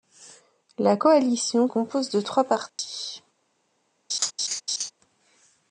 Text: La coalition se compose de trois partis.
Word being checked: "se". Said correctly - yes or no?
no